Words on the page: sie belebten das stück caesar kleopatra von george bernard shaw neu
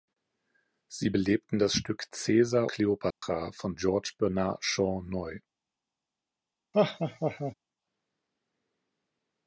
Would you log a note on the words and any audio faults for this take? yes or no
yes